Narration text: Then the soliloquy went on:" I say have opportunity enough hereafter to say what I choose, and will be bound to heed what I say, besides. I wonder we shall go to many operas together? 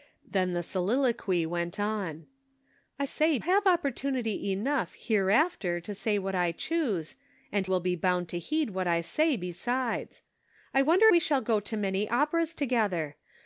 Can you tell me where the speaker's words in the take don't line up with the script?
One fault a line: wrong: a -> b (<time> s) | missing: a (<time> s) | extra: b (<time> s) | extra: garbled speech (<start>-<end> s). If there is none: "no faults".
no faults